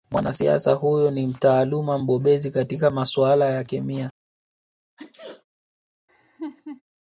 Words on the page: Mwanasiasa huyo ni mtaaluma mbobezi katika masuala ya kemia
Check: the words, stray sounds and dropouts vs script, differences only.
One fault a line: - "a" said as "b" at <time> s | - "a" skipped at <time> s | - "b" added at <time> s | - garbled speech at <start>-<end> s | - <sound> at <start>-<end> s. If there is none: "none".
- sneeze at 5.0-5.4 s
- laugh at 6.1-6.8 s